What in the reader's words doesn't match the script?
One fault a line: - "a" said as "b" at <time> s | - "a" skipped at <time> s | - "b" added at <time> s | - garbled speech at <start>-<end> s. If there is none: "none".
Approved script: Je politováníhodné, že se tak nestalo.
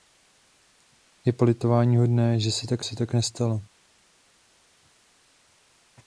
- "se tak" added at 2.8 s